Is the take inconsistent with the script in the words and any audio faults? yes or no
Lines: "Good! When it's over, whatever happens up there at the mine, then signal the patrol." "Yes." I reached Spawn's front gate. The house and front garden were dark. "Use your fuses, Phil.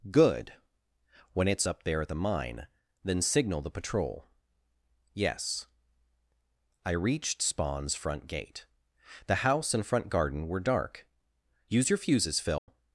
yes